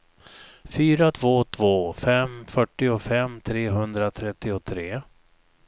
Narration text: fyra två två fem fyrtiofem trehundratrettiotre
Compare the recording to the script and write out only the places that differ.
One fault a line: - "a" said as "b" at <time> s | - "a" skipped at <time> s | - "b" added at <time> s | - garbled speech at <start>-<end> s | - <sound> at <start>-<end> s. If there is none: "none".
none